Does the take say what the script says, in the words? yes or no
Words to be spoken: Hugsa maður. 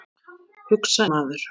yes